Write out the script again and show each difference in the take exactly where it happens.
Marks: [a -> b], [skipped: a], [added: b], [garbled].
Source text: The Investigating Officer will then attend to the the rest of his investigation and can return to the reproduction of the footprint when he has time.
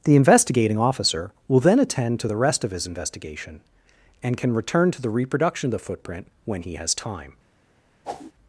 The Investigating Officer will then attend to the [skipped: the] rest of his investigation and can return to the reproduction of the footprint when he has time.